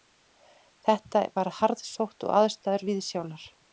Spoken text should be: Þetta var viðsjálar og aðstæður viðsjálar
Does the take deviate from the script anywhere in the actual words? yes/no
yes